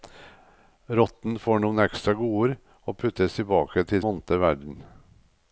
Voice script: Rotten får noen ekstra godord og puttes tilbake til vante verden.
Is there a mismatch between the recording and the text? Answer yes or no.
no